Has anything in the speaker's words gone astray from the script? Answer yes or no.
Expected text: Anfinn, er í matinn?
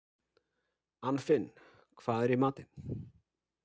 yes